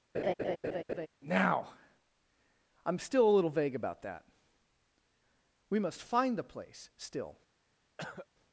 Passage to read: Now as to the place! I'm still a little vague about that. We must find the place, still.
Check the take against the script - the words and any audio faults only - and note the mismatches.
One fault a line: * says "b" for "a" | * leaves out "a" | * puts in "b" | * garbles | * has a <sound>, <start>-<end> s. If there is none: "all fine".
* has a laugh, 0.1-1.1 s
* leaves out "as to the place"
* has a cough, 8.0-8.3 s